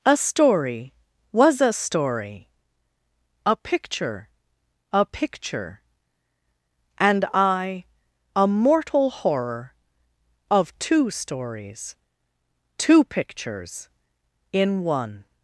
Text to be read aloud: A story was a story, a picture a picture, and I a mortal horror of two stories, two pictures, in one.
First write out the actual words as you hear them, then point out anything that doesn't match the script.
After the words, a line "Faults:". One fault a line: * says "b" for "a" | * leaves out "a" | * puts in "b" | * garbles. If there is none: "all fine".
A story was a story, a picture a picture, and I a mortal horror of two stories, two pictures, in one.
Faults:
all fine